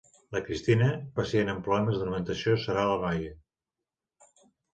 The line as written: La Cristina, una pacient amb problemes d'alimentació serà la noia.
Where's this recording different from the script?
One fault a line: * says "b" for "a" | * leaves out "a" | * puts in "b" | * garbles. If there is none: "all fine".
* leaves out "una"